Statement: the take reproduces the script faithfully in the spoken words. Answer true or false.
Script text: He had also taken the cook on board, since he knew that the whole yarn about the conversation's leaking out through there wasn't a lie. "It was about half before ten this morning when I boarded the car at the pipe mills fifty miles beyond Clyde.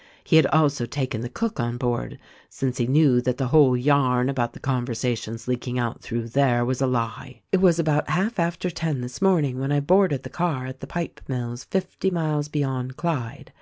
false